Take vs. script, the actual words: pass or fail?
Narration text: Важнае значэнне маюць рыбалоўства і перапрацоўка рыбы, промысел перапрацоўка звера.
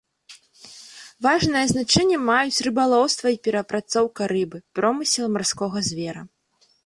fail